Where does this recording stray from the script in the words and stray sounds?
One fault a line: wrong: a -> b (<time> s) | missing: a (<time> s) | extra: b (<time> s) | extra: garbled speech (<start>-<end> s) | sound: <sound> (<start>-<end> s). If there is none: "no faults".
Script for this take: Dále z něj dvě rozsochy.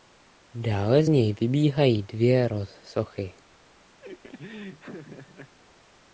extra: vybíhají (1.4 s)
sound: laugh (4.0-5.5 s)